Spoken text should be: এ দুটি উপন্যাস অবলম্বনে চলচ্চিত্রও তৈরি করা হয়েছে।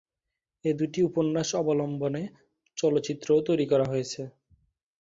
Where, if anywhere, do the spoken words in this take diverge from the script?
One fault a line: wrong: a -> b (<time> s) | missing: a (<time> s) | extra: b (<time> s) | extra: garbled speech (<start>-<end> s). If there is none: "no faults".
no faults